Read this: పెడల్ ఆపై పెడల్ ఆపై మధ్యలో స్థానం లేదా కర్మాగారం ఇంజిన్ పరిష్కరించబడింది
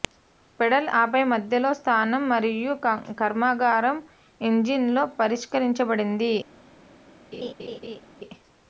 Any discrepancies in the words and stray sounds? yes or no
yes